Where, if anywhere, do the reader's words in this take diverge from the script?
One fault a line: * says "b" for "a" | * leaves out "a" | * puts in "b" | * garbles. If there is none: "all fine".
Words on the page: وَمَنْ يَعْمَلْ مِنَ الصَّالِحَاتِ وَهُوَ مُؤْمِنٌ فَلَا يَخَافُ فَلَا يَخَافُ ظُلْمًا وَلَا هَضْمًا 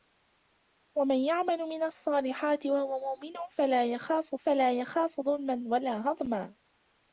all fine